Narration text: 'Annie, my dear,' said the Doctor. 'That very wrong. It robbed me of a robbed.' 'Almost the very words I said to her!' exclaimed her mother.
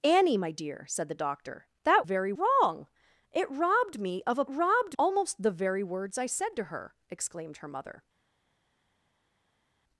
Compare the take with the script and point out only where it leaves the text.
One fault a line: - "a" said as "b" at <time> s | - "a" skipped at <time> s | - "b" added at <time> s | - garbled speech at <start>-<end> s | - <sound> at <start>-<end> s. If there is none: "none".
none